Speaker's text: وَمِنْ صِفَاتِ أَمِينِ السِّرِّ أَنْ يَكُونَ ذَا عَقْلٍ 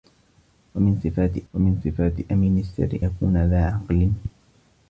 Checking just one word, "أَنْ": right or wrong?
wrong